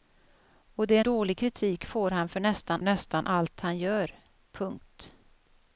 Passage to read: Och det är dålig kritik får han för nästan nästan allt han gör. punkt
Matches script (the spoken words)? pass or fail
pass